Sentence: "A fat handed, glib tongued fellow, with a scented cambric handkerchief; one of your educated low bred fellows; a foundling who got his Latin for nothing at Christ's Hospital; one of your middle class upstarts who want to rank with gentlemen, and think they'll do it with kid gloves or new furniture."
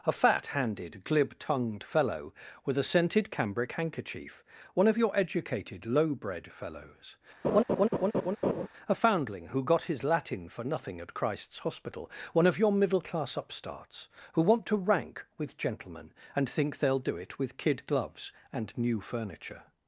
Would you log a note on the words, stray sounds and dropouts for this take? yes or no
yes